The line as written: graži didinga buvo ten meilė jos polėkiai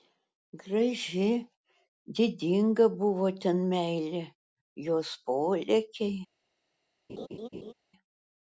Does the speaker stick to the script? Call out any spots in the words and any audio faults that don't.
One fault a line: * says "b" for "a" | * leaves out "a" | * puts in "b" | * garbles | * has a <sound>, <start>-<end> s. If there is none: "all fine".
* has a laugh, 7.1-7.7 s